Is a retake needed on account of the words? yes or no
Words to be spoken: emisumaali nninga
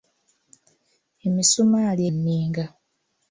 no